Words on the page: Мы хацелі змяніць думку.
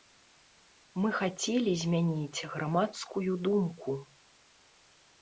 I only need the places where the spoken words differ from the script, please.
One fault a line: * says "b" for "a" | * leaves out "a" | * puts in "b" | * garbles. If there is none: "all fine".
* puts in "грамадскую"